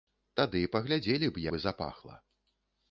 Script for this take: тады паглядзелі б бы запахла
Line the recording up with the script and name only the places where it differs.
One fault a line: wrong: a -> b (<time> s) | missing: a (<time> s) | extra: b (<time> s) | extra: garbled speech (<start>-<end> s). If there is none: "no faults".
no faults